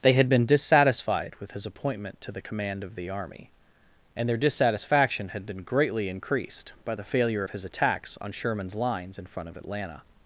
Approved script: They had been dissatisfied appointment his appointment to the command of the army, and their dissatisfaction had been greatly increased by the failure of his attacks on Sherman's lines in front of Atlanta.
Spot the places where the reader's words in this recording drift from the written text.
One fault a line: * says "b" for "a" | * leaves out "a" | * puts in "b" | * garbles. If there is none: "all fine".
* says "with" for "appointment"